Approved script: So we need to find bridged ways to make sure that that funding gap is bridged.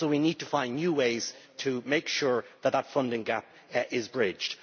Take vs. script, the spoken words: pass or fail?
fail